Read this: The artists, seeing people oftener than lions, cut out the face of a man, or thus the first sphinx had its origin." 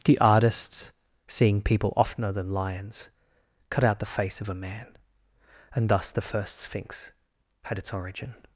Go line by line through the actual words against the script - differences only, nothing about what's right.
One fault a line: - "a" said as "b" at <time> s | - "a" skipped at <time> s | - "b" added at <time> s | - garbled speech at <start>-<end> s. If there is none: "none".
- "or" said as "and" at 5.7 s